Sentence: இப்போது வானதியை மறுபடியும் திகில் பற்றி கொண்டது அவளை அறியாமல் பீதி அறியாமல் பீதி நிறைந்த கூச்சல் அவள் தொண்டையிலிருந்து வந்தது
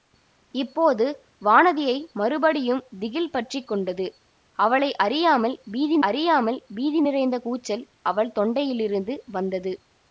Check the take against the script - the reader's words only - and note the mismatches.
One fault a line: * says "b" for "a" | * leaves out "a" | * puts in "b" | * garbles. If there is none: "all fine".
all fine